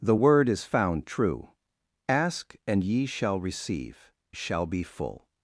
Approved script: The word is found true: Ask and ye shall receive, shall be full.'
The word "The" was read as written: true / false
true